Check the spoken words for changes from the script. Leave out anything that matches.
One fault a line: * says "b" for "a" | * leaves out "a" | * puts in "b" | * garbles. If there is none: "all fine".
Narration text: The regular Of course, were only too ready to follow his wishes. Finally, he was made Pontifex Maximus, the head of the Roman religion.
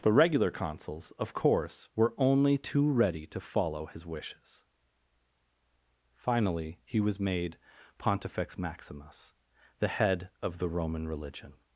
* puts in "Consuls"